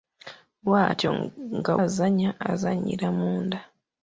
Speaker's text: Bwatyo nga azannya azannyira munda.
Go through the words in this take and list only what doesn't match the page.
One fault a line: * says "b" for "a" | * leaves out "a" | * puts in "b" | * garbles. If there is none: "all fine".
all fine